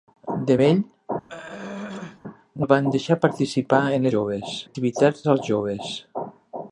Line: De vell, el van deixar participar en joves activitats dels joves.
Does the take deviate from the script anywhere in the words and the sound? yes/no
yes